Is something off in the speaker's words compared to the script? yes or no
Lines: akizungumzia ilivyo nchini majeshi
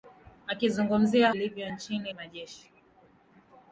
no